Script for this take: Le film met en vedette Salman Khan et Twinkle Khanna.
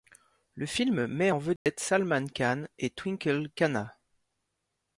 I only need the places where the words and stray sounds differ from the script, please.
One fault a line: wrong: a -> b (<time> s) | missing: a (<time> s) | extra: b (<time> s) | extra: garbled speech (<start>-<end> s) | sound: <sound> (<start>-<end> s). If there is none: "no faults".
sound: dropout (1.6-1.7 s)